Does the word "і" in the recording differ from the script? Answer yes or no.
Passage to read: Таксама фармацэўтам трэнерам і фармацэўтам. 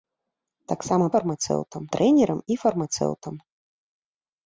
no